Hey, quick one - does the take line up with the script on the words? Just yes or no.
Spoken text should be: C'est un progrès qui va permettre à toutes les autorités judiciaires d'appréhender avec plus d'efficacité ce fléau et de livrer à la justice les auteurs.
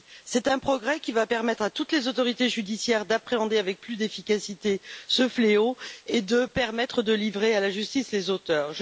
yes